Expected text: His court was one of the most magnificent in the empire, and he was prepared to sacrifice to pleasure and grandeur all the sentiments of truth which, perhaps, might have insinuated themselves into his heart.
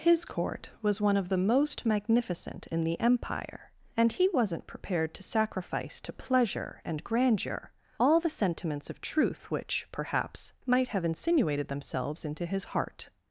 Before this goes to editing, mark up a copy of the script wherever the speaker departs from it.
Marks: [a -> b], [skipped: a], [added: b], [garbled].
His court was one of the most magnificent in the empire, and he [was -> wasn't] prepared to sacrifice to pleasure and grandeur all the sentiments of truth which, perhaps, might have insinuated themselves into his heart.